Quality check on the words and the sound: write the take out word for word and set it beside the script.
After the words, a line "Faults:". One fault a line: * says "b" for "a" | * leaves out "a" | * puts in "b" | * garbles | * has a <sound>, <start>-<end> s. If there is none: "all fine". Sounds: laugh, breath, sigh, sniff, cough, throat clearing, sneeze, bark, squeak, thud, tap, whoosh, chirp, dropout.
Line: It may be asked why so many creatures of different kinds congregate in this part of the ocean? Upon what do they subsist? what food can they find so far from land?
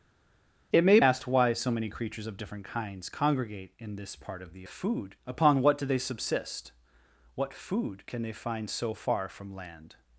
It may asked why so many creatures of different kinds congregate in this part of the food? Upon what do they subsist? what food can they find so far from land?
Faults:
* leaves out "be"
* says "food" for "ocean"